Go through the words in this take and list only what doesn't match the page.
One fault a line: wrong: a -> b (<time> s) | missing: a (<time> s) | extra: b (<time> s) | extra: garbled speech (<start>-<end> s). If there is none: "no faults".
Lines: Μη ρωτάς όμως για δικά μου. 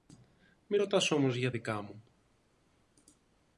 no faults